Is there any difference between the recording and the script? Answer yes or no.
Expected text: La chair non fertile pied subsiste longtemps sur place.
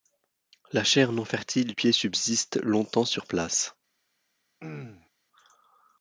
no